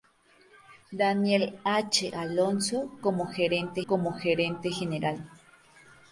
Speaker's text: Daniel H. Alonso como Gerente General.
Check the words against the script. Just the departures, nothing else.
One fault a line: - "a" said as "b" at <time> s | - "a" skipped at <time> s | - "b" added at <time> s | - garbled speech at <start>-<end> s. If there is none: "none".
- "como Gerente" added at 3.9 s